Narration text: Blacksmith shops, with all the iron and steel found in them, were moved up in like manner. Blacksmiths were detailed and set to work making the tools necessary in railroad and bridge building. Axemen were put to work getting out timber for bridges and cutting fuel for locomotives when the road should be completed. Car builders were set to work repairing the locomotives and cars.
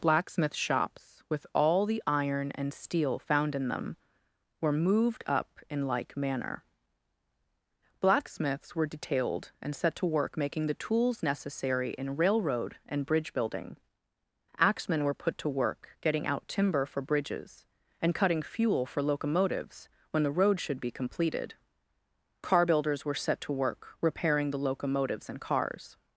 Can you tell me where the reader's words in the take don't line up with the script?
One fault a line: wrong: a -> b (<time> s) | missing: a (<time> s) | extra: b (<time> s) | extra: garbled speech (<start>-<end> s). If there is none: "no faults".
no faults